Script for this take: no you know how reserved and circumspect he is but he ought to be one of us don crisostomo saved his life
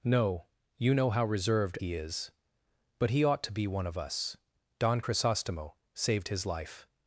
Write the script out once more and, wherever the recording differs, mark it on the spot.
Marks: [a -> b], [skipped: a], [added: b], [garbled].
no you know how reserved [skipped: and circumspect] he is but he ought to be one of us don crisostomo saved his life